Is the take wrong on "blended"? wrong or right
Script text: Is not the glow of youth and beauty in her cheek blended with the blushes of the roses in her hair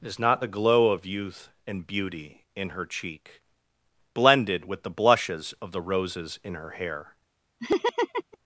right